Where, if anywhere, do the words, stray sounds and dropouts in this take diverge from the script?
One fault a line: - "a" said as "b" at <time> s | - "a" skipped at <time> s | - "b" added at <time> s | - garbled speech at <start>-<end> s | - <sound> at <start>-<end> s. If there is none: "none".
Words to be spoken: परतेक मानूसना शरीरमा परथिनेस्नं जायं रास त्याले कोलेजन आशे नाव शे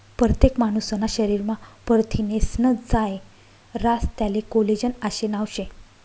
none